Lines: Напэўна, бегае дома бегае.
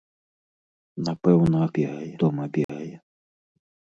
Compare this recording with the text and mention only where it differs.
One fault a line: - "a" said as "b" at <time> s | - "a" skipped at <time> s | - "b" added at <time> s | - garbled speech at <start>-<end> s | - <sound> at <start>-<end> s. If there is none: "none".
- dropout at 2.6-2.7 s